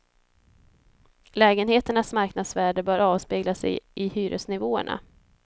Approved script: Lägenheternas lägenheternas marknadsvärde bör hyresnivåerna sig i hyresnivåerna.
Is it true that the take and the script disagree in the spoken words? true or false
true